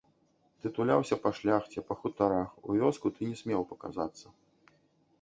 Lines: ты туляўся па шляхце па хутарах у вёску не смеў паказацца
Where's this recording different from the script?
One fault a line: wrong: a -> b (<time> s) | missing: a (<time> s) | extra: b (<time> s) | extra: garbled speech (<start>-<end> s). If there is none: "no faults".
extra: ты (3.2 s)